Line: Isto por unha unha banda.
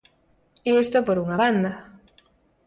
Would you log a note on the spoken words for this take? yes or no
yes